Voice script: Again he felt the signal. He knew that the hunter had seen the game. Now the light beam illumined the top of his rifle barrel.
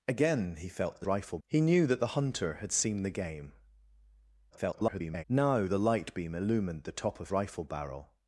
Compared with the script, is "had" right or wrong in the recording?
right